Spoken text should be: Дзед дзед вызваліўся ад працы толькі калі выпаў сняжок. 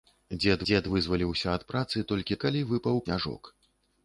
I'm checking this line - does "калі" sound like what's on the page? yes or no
yes